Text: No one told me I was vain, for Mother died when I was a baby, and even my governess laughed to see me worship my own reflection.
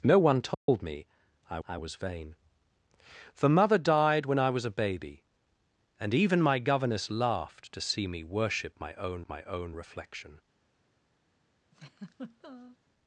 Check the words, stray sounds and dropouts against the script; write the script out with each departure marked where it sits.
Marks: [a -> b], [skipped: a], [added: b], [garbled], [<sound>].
No one told [dropout] me I [added: I] was vain, for Mother died when I was a baby, and even my governess laughed to see me worship my own [added: my own] reflection. [laugh]